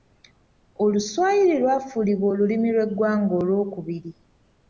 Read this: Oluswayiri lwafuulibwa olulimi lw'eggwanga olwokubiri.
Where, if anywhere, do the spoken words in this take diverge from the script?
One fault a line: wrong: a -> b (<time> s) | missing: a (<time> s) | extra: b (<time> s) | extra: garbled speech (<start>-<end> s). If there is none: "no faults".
no faults